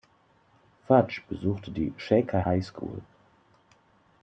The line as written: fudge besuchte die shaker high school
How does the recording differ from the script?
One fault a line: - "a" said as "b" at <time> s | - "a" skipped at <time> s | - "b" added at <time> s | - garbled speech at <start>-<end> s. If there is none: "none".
none